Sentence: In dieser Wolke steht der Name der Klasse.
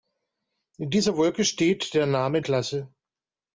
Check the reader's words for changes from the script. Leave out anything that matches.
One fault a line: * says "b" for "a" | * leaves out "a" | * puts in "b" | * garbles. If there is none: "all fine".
* leaves out "der"